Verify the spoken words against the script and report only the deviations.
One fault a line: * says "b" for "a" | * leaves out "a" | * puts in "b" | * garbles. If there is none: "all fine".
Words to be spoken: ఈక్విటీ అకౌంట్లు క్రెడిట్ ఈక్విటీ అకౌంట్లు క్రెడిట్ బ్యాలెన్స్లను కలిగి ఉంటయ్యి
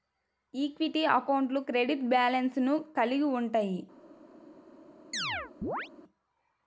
* leaves out "ఈక్విటీ అకౌంట్లు క్రెడిట్"